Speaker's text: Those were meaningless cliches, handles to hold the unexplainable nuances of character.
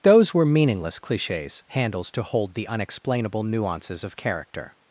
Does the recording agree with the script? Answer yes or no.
yes